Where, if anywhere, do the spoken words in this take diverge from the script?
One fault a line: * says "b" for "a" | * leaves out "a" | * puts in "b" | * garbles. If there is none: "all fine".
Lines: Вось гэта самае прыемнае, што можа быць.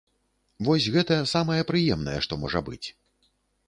all fine